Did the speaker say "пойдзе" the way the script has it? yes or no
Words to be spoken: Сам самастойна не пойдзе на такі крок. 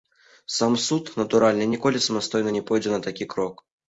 yes